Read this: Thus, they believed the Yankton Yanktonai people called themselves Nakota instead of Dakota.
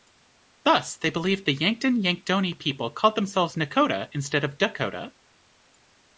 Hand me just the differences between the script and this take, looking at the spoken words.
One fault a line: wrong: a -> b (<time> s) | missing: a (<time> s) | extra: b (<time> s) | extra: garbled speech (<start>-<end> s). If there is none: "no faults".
no faults